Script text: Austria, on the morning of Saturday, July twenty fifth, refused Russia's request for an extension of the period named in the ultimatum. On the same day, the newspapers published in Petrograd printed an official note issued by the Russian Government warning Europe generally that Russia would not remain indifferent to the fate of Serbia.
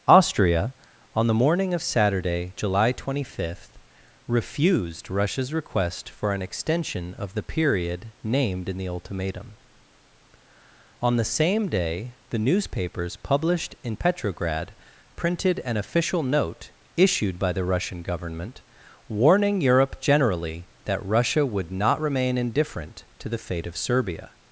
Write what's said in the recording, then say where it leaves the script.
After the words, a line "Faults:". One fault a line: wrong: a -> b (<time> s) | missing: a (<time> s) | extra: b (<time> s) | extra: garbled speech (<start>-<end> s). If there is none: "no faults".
Austria, on the morning of Saturday, July twenty fifth, refused Russia's request for an extension of the period named in the ultimatum. On the same day, the newspapers published in Petrograd printed an official note issued by the Russian Government warning Europe generally that Russia would not remain indifferent to the fate of Serbia.
Faults:
no faults